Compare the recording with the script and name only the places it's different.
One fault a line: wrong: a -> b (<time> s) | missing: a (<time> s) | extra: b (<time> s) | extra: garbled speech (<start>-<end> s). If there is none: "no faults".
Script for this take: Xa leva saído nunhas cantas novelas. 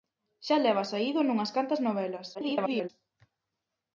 extra: garbled speech (2.3-2.9 s)